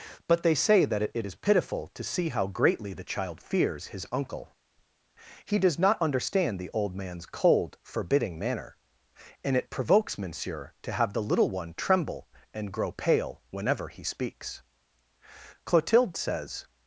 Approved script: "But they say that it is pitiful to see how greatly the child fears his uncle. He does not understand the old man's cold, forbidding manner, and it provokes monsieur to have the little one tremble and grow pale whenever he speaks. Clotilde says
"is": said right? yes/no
yes